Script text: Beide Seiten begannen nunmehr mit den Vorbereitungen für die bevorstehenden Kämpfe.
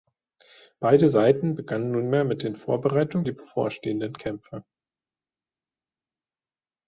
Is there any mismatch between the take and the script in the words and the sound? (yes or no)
yes